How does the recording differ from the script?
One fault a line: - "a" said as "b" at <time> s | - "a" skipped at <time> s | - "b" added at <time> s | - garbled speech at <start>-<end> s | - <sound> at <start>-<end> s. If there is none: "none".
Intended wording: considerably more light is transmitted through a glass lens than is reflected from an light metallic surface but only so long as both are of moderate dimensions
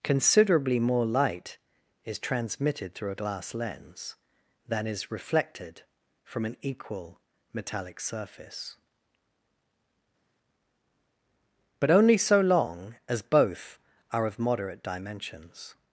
- "light" said as "equal" at 6.6 s